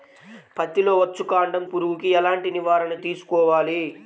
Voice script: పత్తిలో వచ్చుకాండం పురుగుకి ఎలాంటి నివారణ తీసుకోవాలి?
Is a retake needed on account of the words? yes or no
no